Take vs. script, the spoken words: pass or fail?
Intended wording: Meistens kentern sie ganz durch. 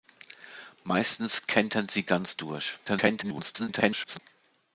fail